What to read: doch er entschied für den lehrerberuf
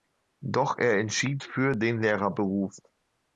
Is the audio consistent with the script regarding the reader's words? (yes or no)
yes